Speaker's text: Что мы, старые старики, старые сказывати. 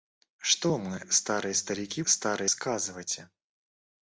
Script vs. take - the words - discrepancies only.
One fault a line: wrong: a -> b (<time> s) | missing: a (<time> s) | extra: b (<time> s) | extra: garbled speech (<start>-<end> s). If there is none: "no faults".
no faults